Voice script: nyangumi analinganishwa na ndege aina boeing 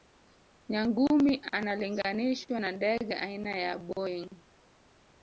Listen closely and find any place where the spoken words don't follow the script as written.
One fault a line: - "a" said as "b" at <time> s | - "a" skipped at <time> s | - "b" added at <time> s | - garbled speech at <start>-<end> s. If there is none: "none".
- "ya" added at 3.5 s